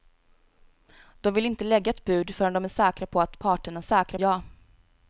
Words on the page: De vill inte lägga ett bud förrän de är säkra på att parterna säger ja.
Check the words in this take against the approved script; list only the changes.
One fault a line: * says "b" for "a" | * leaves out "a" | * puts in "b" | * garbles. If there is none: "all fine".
* says "säkra" for "säger"